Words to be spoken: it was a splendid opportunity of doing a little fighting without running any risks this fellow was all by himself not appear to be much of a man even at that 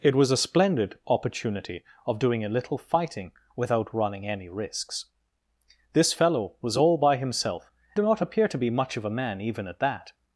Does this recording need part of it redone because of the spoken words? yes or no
no